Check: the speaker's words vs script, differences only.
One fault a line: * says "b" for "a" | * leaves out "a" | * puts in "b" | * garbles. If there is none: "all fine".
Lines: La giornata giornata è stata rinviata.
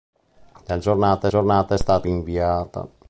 all fine